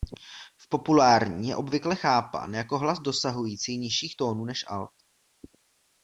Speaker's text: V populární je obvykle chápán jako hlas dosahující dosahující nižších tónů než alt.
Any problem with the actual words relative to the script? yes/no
yes